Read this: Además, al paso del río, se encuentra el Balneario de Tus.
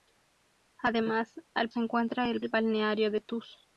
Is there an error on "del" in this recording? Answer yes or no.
yes